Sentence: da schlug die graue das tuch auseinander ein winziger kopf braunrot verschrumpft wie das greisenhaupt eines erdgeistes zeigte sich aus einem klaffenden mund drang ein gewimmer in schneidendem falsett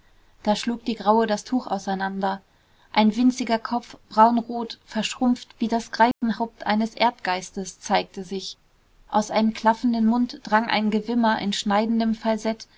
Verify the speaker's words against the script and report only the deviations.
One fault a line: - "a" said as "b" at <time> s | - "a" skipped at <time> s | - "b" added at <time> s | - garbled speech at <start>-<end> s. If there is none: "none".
none